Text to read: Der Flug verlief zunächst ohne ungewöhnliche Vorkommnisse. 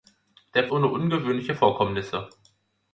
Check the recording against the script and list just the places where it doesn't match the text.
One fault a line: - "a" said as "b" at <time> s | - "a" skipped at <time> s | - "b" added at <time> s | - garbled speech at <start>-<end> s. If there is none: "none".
- "Flug verlief zunächst" skipped at 0.7 s